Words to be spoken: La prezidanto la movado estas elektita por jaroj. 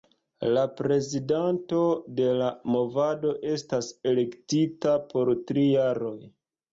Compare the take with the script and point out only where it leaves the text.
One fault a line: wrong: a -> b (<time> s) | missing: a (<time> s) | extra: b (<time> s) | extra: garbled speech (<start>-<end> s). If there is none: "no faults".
extra: de (2.2 s)
extra: tri (5.5 s)